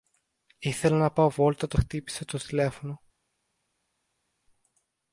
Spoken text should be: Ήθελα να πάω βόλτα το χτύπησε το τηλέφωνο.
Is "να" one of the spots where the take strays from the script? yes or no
no